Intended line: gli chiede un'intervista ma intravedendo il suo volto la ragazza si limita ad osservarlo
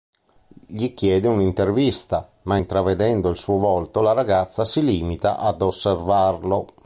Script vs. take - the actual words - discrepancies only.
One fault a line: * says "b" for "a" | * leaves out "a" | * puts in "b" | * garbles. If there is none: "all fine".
all fine